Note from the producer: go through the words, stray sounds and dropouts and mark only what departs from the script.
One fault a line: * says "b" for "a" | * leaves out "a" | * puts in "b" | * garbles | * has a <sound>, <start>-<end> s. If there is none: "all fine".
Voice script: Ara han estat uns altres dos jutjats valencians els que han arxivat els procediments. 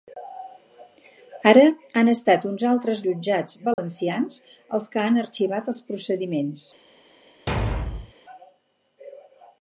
* leaves out "dos"
* has a dropout, 3.7-3.8 s
* has a thud, 7.5-8.1 s